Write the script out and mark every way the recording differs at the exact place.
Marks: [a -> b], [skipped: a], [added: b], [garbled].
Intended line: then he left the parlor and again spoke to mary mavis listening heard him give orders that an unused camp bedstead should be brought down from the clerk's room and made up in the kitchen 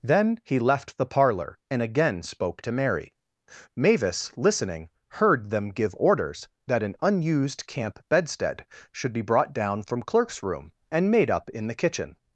then he left the parlor and again spoke to mary mavis listening heard [him -> them] give orders that an unused camp bedstead should be brought down from [skipped: the] clerk's room and made up in the kitchen